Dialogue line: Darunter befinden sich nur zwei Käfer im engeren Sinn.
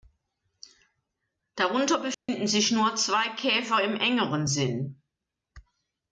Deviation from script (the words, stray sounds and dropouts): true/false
true